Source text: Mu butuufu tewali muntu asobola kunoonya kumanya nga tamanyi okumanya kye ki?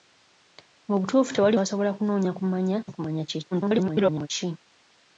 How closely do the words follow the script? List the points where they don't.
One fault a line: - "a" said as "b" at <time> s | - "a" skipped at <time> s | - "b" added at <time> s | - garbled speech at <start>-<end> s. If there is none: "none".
- "muntu" skipped at 1.6 s
- "nga tamanyi" skipped at 2.8 s
- garbled speech at 3.5-4.3 s